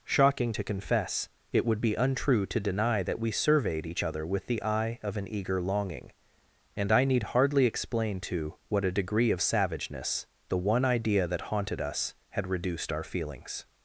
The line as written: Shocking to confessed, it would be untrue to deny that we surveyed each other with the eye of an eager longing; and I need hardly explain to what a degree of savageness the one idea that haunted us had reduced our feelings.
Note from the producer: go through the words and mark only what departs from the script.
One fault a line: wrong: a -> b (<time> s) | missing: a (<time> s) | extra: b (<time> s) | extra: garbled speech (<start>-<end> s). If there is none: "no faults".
wrong: confessed -> confess (0.6 s)